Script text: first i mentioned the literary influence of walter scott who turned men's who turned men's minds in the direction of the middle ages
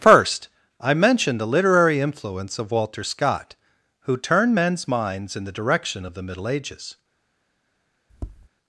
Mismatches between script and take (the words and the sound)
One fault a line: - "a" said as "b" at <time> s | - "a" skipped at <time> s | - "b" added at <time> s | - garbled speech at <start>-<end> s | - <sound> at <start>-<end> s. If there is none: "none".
- "who turned men's" skipped at 4.9 s
- tap at 8.1-8.5 s